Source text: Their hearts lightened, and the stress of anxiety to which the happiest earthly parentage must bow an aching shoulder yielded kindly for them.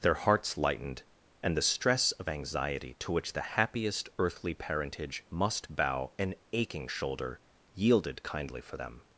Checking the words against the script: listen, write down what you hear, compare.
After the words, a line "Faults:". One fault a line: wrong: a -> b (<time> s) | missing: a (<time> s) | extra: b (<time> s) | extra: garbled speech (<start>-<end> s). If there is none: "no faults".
Their hearts lightened, and the stress of anxiety to which the happiest earthly parentage must bow an aching shoulder yielded kindly for them.
Faults:
no faults